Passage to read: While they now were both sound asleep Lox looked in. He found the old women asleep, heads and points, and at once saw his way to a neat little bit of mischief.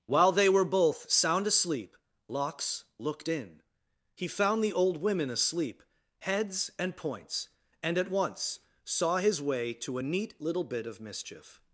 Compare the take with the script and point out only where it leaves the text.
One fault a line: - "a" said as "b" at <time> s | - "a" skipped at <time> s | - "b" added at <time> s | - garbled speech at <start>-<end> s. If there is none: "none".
- "now" skipped at 0.5 s